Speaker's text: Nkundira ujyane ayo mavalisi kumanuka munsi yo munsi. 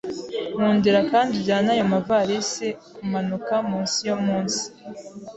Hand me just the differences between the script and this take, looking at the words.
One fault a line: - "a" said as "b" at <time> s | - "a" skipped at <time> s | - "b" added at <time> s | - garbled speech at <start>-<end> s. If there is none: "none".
- "kandi" added at 1.1 s